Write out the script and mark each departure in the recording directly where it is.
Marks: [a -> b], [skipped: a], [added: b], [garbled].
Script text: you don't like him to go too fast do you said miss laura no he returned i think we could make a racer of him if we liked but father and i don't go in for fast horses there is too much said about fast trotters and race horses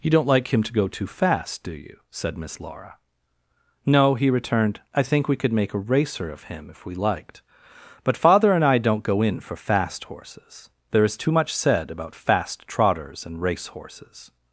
you don't like him to go too fast do you said miss laura no he returned i think we could make a racer of him if we liked but father and i don't go in for fast horses there is too much said about fast trotters and race horses